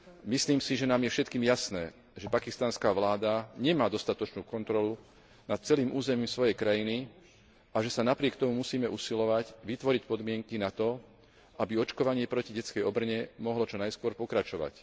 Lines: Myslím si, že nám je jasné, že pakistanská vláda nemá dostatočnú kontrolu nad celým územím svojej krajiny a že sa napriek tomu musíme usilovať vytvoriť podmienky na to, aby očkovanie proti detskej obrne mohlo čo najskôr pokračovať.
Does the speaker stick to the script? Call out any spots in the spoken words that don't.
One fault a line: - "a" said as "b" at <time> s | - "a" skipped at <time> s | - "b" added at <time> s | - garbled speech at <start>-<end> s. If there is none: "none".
- "všetkým" added at 1.1 s